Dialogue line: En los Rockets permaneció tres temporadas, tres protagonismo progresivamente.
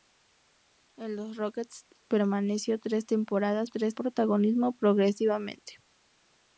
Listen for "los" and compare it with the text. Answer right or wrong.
right